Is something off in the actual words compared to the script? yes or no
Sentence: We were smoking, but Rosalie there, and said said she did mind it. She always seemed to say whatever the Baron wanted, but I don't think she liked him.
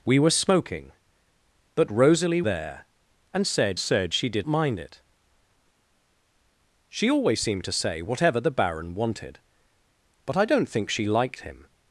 no